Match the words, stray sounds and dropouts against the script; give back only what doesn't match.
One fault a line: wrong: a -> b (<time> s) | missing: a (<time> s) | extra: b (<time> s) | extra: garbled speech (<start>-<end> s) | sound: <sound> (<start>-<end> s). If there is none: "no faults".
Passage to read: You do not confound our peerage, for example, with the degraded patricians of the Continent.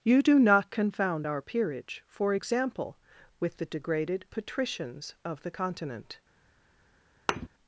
sound: thud (7.3-7.5 s)